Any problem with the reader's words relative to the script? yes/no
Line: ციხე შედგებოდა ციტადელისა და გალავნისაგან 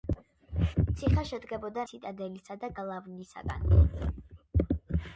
no